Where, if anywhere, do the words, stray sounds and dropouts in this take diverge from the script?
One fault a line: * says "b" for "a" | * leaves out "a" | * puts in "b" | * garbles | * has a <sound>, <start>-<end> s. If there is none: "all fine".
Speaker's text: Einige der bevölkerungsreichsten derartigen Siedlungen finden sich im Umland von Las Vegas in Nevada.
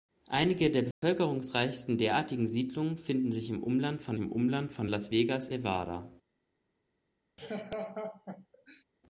* has a dropout, 0.9-1.0 s
* puts in "im Umland von"
* leaves out "in"
* has a laugh, 7.4-8.8 s